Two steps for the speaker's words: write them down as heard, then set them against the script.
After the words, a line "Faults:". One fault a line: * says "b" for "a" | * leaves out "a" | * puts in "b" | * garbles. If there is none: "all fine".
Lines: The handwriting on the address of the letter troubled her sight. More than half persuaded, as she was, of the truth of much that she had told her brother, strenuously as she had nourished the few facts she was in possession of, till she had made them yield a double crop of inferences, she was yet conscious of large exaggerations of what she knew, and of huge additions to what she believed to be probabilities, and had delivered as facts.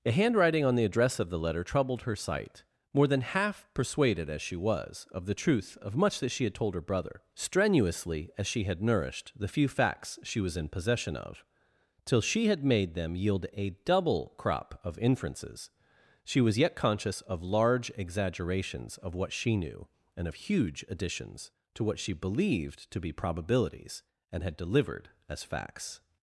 The handwriting on the address of the letter troubled her sight. More than half persuaded, as she was, of the truth of much that she had told her brother, strenuously as she had nourished the few facts she was in possession of, till she had made them yield a double crop of inferences, she was yet conscious of large exaggerations of what she knew, and of huge additions to what she believed to be probabilities, and had delivered as facts.
Faults:
all fine